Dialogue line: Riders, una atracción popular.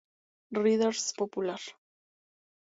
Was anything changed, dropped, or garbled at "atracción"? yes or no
yes